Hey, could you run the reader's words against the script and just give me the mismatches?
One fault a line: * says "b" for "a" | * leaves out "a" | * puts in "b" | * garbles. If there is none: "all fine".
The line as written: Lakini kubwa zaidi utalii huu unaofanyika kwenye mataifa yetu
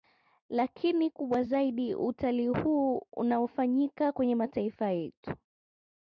all fine